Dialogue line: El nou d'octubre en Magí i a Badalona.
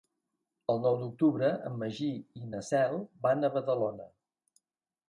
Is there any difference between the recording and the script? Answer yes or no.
yes